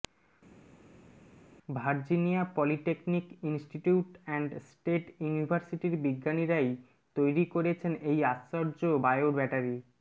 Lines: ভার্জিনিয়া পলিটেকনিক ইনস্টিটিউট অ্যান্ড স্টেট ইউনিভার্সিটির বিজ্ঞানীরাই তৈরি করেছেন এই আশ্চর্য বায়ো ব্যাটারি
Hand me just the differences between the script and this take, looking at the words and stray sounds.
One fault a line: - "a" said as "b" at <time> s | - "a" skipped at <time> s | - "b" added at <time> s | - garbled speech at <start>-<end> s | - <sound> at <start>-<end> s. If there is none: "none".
none